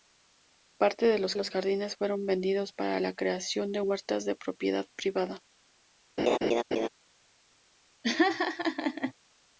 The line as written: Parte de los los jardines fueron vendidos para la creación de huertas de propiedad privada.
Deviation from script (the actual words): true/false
false